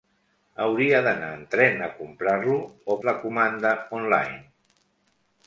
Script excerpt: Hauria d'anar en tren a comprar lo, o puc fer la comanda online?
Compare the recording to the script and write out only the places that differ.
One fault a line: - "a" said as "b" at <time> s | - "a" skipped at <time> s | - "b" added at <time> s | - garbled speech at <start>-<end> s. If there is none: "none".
- "puc fer" skipped at 3.0 s